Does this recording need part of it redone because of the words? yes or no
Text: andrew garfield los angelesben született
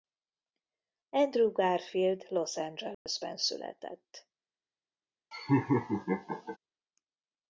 no